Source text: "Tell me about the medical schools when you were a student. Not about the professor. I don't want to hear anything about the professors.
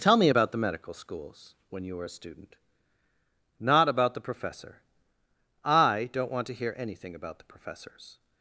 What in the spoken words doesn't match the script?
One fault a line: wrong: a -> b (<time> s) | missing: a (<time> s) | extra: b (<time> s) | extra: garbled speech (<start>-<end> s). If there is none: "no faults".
no faults